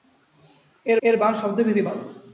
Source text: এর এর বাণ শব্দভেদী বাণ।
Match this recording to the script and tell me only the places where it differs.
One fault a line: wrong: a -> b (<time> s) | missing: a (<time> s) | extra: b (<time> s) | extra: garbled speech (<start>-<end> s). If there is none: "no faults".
no faults